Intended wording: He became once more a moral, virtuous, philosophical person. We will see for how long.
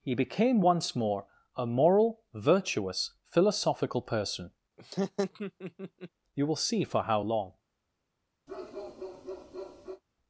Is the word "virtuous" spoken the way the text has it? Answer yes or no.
yes